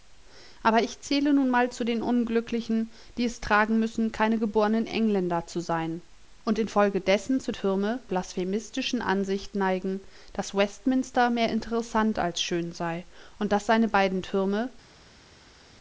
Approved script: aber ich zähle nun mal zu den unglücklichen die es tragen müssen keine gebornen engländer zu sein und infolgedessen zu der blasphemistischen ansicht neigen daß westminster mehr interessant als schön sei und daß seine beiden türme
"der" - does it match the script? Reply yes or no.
no